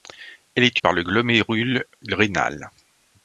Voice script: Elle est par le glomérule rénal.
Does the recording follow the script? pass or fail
pass